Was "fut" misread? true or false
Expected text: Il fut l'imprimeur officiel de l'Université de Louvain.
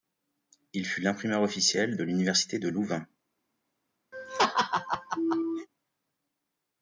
false